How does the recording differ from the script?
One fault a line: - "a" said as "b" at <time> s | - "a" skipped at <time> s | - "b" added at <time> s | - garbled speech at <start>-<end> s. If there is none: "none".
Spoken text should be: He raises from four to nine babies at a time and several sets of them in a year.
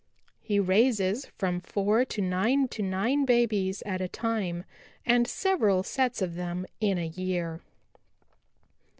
- "to nine" added at 2.7 s